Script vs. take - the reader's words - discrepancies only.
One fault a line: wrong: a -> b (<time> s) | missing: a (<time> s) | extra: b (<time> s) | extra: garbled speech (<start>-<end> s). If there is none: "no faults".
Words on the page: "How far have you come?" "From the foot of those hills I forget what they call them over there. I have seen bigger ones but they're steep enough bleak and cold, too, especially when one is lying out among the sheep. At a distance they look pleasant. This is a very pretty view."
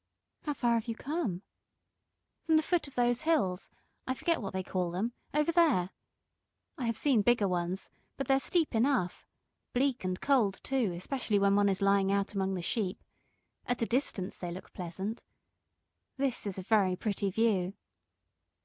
no faults